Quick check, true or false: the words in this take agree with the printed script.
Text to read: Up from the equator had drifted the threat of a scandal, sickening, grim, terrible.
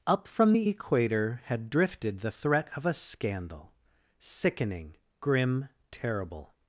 true